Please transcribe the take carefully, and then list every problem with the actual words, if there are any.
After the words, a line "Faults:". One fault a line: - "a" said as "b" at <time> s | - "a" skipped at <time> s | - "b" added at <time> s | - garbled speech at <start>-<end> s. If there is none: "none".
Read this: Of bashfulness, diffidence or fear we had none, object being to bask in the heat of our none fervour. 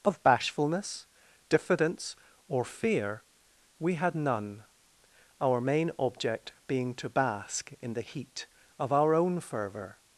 Of bashfulness, diffidence or fear we had none, our main object being to bask in the heat of our own fervour.
Faults:
- "our main" added at 5.4 s
- "none" said as "own" at 9.1 s